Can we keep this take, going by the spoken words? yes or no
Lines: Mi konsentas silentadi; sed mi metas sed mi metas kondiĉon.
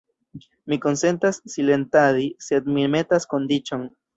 no